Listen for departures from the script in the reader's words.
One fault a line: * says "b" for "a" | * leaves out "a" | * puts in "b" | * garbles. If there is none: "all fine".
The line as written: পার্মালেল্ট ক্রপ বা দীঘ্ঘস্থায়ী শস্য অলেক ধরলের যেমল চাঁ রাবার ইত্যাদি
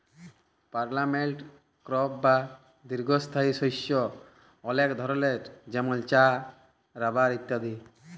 all fine